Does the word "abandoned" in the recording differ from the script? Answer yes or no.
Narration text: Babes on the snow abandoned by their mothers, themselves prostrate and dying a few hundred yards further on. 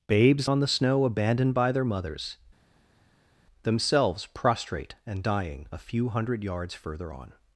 no